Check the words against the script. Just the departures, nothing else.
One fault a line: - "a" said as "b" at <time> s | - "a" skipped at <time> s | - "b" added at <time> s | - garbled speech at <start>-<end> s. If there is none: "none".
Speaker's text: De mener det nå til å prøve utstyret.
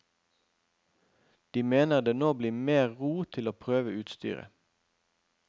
- "blir mer ro" added at 2.4 s